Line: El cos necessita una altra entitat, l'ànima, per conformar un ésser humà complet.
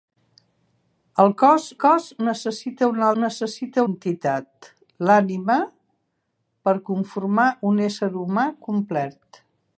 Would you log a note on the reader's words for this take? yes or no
yes